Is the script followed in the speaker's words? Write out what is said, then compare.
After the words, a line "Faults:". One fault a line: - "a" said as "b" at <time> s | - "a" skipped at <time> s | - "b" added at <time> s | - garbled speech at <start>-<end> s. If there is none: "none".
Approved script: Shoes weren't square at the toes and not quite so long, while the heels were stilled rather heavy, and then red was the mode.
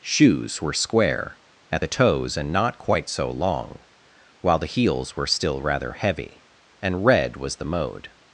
Shoes were square at the toes and not quite so long, while the heels were still rather heavy, and red was the mode.
Faults:
- "weren't" said as "were" at 0.6 s
- "stilled" said as "still" at 5.2 s
- "then" skipped at 7.0 s